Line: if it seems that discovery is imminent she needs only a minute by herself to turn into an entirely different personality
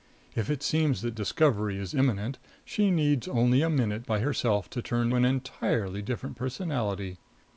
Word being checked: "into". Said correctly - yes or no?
no